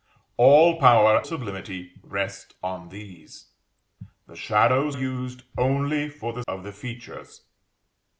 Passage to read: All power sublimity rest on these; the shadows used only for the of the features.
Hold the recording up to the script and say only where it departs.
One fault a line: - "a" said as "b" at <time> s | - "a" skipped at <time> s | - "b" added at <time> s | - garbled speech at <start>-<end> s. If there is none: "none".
none